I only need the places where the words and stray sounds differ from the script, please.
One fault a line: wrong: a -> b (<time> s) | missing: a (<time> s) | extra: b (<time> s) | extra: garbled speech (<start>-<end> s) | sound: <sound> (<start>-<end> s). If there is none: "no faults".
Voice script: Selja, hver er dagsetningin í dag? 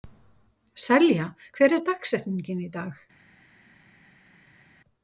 no faults